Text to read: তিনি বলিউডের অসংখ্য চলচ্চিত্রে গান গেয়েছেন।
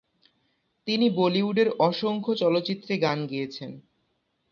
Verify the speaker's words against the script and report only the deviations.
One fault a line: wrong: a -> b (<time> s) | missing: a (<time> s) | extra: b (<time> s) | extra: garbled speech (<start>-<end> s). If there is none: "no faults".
no faults